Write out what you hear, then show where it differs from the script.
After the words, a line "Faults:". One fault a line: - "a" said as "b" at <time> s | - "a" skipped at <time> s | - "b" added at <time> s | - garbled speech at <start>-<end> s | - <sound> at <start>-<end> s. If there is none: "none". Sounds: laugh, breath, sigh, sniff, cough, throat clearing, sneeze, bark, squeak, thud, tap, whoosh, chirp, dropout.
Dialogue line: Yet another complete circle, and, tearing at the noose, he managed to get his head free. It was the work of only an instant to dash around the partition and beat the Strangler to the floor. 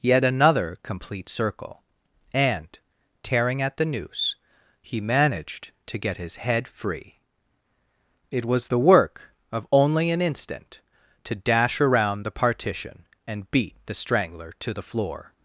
Yet another complete circle, and, tearing at the noose, he managed to get his head free. It was the work of only an instant to dash around the partition and beat the Strangler to the floor.
Faults:
none